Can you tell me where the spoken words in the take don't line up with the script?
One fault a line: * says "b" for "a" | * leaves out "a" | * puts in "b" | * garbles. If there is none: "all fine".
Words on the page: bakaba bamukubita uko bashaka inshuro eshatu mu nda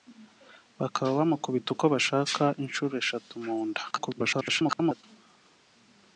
* garbles